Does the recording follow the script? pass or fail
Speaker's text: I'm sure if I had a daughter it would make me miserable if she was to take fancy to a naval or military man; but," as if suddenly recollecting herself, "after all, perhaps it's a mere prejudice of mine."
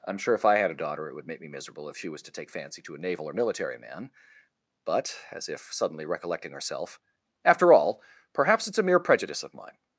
pass